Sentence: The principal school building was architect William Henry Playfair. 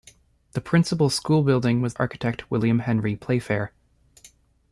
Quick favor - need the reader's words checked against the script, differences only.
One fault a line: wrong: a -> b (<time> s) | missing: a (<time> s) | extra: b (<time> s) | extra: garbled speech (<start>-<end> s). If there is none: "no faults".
no faults